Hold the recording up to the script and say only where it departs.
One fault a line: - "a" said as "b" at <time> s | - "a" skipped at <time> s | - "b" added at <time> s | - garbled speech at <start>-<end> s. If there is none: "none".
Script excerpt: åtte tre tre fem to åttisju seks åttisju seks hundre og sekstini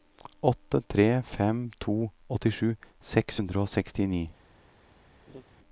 - "tre" skipped at 1.2 s
- "åttisju seks" skipped at 3.4 s